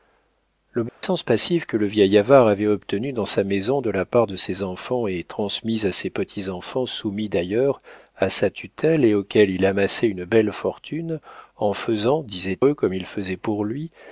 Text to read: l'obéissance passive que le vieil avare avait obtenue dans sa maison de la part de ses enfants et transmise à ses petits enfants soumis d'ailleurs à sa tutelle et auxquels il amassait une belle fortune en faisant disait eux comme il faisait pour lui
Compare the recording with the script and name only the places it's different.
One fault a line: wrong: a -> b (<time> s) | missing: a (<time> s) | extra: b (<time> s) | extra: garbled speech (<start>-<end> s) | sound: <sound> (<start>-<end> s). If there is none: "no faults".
sound: dropout (0.9-1.0 s)